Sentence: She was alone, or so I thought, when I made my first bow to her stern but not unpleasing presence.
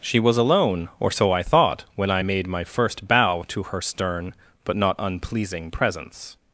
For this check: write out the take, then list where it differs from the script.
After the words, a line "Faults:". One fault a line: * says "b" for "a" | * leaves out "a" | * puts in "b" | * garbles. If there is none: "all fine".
She was alone, or so I thought, when I made my first bow to her stern but not unpleasing presence.
Faults:
all fine